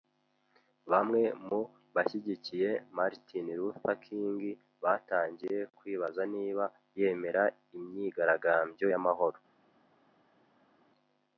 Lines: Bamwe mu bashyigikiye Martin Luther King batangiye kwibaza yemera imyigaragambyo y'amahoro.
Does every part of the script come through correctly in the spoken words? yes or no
no